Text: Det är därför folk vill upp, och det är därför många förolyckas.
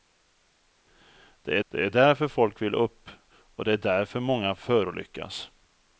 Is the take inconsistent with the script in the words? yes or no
yes